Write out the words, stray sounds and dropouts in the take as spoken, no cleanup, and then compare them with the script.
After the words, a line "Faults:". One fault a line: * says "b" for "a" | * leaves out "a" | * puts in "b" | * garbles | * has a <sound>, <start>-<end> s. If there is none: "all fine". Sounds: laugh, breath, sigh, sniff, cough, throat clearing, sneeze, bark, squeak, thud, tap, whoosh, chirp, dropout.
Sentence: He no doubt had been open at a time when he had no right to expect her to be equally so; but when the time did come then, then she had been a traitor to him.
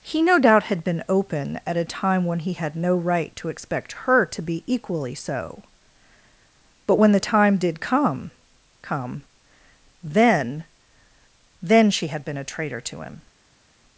He no doubt had been open at a time when he had no right to expect her to be equally so; but when the time did come come then, then she had been a traitor to him.
Faults:
* puts in "come"